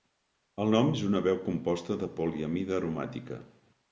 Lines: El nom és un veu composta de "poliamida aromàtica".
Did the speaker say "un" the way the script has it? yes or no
no